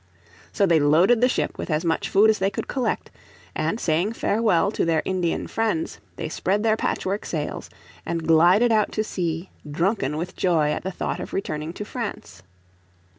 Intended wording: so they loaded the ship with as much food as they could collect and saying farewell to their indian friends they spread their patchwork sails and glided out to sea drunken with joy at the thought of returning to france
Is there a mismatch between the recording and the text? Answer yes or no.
no